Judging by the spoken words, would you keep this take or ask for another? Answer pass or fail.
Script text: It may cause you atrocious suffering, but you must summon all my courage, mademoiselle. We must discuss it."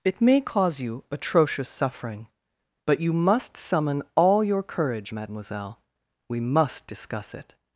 fail